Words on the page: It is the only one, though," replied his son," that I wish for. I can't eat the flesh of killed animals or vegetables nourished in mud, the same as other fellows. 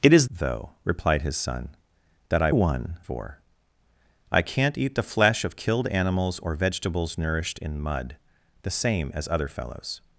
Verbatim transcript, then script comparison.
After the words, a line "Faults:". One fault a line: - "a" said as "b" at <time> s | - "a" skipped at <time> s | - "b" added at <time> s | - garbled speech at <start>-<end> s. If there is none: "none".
It is though," replied his son," that I one for. I can't eat the flesh of killed animals or vegetables nourished in mud, the same as other fellows.
Faults:
- "the only one" skipped at 0.3 s
- "wish" said as "one" at 2.5 s